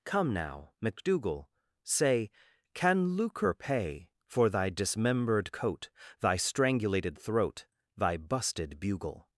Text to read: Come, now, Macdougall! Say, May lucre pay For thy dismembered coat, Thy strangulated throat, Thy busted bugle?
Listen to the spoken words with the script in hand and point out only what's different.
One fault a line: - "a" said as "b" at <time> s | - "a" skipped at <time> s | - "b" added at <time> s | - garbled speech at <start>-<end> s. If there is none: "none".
- "May" said as "Can" at 2.7 s